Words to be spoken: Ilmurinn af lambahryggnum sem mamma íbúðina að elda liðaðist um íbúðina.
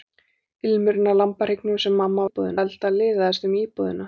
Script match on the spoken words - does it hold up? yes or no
yes